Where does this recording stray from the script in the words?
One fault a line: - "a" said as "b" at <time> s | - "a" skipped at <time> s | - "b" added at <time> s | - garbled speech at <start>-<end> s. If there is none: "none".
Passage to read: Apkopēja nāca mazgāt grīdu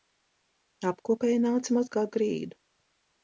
none